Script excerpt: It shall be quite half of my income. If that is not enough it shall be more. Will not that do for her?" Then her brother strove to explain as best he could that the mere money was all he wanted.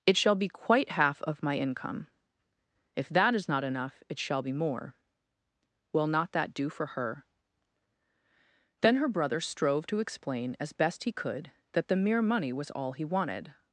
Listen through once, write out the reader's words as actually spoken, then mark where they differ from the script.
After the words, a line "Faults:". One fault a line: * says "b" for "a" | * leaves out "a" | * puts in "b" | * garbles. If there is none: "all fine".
It shall be quite half of my income. If that is not enough it shall be more. Will not that do for her?" Then her brother strove to explain as best he could that the mere money was all he wanted.
Faults:
all fine